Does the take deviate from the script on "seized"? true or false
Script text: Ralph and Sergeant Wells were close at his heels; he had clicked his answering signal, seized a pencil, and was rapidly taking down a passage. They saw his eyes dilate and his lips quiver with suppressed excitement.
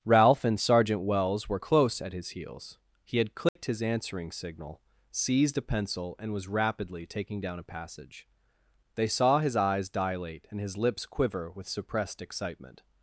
false